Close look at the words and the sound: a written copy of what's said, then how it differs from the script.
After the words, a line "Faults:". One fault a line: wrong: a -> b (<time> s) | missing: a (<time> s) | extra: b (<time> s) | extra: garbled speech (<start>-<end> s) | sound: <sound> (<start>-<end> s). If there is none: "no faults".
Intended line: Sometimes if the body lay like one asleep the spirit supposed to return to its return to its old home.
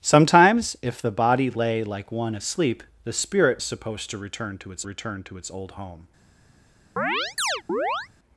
Sometimes if the body lay like one asleep the spirit supposed to return to its return to its old home.
Faults:
sound: chirp (7.0-8.1 s)